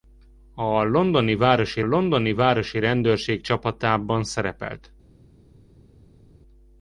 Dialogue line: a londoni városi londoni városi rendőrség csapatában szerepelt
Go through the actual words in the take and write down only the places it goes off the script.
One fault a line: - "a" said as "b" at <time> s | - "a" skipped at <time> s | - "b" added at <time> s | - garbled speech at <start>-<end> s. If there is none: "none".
none